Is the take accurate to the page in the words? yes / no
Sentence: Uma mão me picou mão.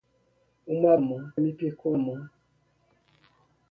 yes